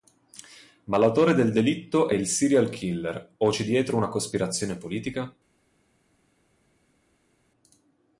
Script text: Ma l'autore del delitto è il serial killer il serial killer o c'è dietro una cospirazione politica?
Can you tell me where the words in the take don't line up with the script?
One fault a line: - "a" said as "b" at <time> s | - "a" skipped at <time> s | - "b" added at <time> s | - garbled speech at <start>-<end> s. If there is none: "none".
- "il serial killer" skipped at 3.3 s